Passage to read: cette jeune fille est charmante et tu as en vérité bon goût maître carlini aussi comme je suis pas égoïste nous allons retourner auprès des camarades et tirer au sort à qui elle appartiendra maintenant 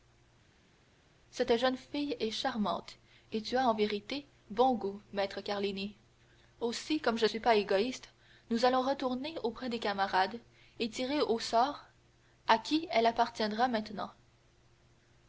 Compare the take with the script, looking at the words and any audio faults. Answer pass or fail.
pass